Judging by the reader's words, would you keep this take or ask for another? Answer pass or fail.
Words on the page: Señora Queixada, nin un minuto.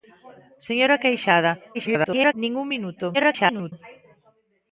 fail